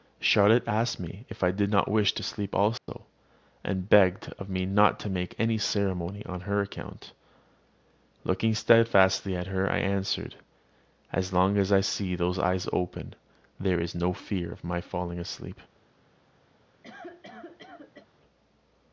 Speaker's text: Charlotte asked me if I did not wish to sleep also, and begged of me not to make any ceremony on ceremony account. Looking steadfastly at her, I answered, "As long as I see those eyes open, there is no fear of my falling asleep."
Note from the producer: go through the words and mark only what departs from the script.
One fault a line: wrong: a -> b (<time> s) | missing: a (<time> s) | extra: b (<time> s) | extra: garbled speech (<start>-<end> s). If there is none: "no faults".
wrong: ceremony -> her (6.4 s)